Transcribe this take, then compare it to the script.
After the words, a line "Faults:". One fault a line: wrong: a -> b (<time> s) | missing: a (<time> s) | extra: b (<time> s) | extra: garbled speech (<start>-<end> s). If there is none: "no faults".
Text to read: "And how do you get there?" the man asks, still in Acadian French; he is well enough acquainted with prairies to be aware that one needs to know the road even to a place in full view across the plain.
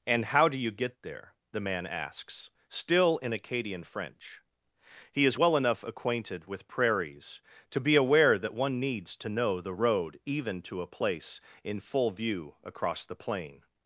"And how do you get there?" the man asks, still in Acadian French; he is well enough acquainted with prairies to be aware that one needs to know the road even to a place in full view across the plain.
Faults:
no faults